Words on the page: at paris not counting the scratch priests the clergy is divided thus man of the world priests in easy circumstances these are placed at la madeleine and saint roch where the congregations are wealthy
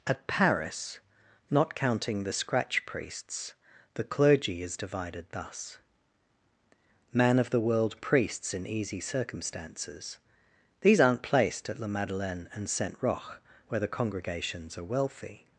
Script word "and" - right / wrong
right